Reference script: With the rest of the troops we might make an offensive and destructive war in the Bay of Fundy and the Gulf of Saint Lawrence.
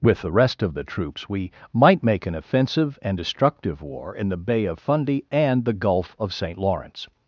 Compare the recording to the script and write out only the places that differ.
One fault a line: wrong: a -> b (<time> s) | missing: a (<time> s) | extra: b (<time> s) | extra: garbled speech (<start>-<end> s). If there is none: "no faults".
no faults